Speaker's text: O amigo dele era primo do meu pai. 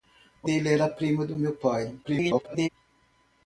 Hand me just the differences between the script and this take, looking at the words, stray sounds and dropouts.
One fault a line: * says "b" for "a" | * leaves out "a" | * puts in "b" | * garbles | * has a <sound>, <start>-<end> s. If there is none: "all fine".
* leaves out "amigo"
* garbles